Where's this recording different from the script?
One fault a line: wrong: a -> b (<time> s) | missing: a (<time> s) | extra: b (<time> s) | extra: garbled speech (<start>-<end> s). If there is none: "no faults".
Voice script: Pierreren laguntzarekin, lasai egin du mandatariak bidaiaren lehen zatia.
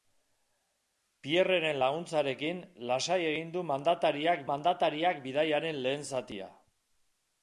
extra: mandatariak (4.5 s)